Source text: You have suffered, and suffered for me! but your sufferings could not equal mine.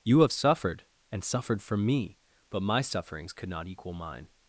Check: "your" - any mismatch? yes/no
yes